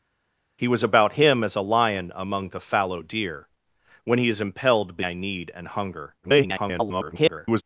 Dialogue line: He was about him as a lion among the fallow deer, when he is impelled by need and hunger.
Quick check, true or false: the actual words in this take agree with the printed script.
false